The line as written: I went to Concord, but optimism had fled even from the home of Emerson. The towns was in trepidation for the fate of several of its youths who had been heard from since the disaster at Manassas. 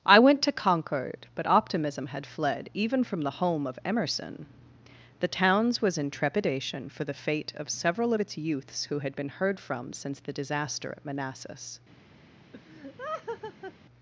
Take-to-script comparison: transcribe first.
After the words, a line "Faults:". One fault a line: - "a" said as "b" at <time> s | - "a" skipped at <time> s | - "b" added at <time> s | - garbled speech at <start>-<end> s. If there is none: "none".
I went to Concord, but optimism had fled even from the home of Emerson. The towns was in trepidation for the fate of several of its youths who had been heard from since the disaster at Manassas.
Faults:
none